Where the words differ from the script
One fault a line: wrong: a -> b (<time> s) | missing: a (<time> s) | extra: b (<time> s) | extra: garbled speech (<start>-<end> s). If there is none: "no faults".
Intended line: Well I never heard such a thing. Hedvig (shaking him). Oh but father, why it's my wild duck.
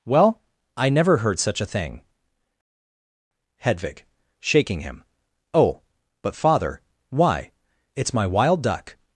no faults